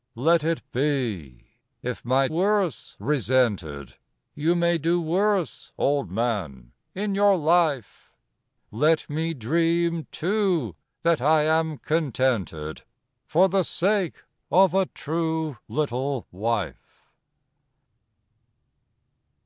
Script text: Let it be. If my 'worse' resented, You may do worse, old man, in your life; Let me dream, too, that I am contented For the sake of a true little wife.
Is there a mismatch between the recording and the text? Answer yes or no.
no